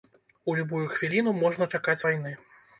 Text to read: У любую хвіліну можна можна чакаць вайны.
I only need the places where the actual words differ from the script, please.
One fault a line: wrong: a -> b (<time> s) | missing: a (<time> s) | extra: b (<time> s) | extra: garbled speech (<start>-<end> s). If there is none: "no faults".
missing: можна (1.7 s)